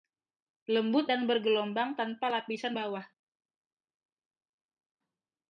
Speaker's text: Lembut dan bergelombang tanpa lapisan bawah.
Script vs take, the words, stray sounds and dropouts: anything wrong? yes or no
no